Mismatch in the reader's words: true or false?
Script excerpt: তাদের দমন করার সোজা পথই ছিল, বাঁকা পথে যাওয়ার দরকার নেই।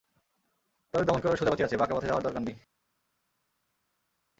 true